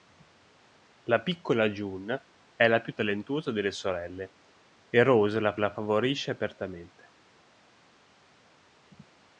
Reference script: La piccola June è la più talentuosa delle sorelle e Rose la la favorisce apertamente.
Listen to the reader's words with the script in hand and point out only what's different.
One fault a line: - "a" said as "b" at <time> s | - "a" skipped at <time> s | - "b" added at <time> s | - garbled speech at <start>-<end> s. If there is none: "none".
none